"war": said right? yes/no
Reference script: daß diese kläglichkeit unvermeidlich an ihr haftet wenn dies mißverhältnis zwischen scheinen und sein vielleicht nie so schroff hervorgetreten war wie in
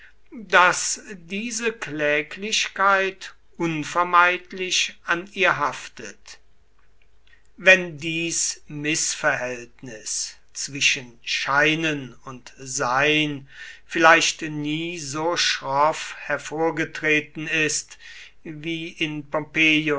no